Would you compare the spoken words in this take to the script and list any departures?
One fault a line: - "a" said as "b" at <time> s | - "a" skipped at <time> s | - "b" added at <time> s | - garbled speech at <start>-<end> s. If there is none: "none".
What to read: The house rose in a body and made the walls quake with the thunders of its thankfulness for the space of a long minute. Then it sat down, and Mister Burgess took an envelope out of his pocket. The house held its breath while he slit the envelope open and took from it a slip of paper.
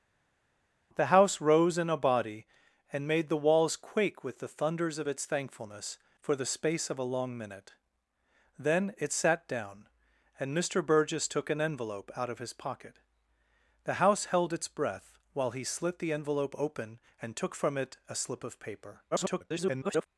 - garbled speech at 19.1-20.1 s